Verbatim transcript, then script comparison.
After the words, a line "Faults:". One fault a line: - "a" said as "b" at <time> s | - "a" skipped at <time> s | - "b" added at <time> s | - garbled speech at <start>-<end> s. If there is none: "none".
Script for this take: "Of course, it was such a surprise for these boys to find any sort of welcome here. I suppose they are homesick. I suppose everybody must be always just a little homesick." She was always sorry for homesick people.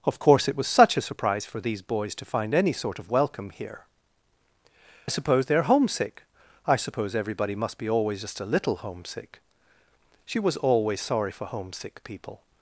"Of course, it was such a surprise for these boys to find any sort of welcome here. I suppose they are homesick. I suppose everybody must be always just a little homesick." She was always sorry for homesick people.
Faults:
none